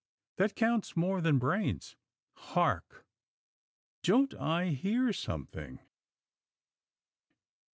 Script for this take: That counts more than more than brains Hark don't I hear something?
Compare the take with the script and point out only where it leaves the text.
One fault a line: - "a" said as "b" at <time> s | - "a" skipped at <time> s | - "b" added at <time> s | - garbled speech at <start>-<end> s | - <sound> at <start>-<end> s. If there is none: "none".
- "more than" skipped at 1.4 s